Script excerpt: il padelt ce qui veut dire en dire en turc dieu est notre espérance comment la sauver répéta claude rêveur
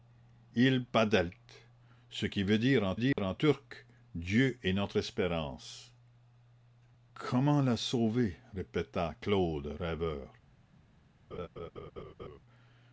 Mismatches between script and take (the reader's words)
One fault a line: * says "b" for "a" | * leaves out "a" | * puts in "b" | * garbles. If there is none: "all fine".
all fine